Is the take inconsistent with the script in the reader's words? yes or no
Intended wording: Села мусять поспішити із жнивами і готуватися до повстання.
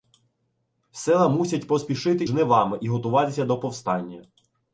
yes